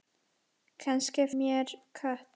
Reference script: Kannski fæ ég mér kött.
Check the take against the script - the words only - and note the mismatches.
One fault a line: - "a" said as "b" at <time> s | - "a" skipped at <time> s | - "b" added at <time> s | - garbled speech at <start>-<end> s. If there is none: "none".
- "fæ ég" skipped at 1.2 s